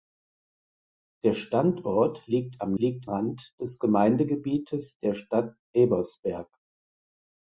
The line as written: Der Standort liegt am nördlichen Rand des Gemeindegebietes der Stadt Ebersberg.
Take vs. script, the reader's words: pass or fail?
fail